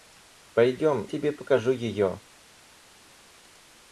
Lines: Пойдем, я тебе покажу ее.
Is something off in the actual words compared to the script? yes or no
yes